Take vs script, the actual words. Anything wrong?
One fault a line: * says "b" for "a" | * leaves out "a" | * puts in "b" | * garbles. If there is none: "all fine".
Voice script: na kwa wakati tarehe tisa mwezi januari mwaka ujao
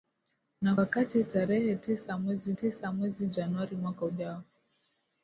* leaves out "kwa"
* puts in "tisa mwezi"